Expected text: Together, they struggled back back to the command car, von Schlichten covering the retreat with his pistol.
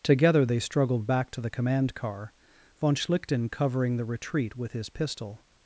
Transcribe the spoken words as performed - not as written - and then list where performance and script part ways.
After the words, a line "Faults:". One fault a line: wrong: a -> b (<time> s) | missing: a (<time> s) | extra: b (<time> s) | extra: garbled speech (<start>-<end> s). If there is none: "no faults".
Together, they struggled back to the command car, von Schlichten covering the retreat with his pistol.
Faults:
missing: back (1.3 s)